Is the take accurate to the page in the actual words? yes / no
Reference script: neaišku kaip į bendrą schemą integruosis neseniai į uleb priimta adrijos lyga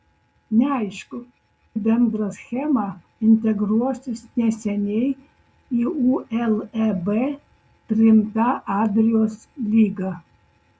no